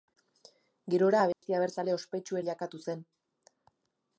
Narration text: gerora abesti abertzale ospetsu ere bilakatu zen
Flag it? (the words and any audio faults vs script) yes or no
yes